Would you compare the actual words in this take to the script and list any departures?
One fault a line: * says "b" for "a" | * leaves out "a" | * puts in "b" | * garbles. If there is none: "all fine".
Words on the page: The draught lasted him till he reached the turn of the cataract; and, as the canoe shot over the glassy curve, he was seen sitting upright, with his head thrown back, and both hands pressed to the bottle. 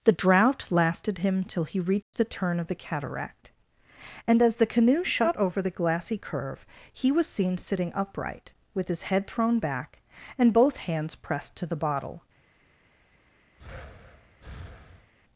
all fine